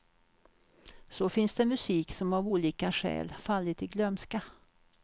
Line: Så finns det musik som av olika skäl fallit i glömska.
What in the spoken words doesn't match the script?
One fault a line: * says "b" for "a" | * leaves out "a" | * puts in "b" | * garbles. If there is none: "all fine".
all fine